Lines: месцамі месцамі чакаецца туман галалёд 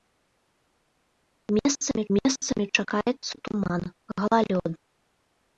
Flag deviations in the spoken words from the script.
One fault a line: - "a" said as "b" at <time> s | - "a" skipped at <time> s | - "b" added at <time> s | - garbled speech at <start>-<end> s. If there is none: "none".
none